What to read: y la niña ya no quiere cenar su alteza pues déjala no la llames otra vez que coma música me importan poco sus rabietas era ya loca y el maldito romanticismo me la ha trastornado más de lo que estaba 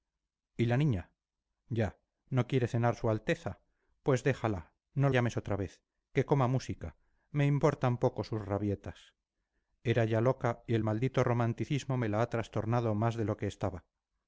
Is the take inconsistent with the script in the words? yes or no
yes